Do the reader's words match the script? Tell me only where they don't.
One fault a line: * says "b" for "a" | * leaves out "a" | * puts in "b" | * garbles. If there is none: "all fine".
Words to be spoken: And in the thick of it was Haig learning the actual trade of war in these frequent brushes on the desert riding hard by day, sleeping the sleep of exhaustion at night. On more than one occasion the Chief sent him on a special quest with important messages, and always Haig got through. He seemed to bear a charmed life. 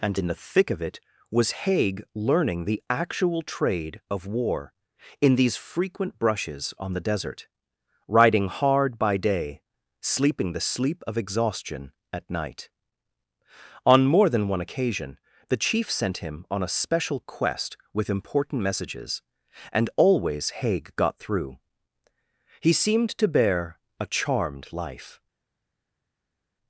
all fine